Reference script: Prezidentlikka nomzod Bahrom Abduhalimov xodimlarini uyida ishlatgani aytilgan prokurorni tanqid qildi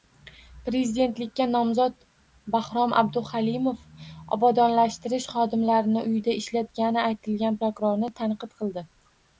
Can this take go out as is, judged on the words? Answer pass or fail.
fail